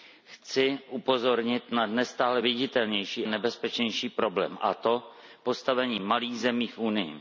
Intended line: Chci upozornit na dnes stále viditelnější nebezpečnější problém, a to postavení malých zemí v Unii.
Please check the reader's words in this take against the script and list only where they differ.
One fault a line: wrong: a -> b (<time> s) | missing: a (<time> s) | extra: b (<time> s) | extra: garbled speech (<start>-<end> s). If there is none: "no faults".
no faults